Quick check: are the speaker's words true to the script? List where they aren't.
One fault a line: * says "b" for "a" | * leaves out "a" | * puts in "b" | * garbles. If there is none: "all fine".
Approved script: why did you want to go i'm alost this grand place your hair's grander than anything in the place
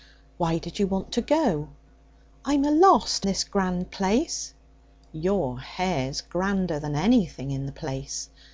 all fine